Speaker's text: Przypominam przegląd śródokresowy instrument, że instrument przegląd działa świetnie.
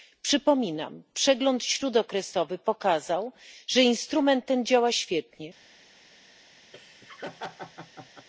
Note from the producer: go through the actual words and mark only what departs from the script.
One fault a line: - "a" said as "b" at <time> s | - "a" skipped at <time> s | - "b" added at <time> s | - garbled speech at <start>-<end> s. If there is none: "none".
- "instrument" said as "pokazał" at 2.6 s
- "przegląd" said as "ten" at 4.5 s